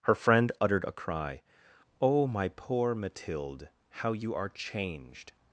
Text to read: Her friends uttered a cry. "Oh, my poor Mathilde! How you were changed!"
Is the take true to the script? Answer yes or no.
no